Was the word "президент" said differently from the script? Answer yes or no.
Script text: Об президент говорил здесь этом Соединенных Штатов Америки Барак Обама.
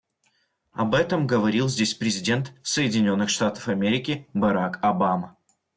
yes